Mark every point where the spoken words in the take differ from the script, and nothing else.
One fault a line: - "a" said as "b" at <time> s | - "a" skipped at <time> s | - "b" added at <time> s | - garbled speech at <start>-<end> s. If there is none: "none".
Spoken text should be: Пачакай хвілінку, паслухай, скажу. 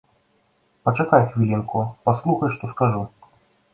- "што" added at 2.6 s